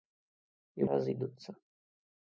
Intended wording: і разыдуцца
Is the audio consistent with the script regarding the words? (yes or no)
yes